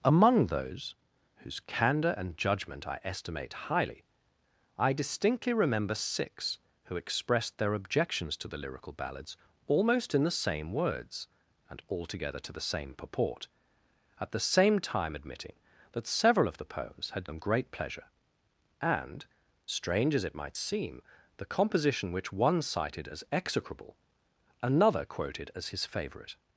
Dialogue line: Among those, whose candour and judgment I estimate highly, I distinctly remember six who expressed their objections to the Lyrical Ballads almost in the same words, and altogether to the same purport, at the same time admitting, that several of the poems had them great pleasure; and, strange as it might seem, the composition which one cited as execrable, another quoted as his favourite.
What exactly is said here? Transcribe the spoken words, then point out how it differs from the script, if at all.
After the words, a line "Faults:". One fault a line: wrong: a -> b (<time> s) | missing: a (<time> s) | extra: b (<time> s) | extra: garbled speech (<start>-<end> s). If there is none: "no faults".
Among those, whose candour and judgment I estimate highly, I distinctly remember six who expressed their objections to the Lyrical Ballads almost in the same words, and altogether to the same purport, at the same time admitting, that several of the poems had them great pleasure; and, strange as it might seem, the composition which one cited as execrable, another quoted as his favourite.
Faults:
no faults